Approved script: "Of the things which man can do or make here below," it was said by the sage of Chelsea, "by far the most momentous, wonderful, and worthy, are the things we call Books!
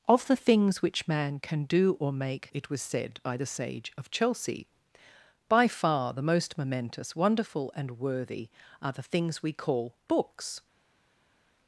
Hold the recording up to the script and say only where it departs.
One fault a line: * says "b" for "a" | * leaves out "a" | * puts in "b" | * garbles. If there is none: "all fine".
* leaves out "here below"